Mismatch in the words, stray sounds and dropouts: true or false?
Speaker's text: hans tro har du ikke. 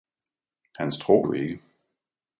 true